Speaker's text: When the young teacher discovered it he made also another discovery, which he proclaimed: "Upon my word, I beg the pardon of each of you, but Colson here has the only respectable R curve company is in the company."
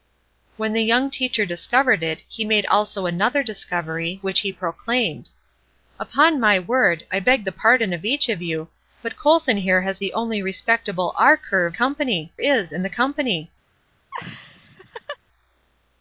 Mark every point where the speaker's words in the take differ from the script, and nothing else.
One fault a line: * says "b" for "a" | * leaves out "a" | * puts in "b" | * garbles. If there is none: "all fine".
all fine